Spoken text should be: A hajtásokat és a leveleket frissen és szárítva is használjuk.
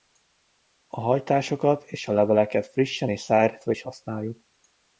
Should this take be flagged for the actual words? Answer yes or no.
no